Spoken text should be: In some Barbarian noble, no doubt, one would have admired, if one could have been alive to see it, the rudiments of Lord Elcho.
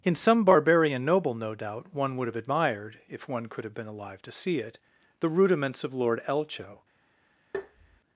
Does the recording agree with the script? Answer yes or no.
yes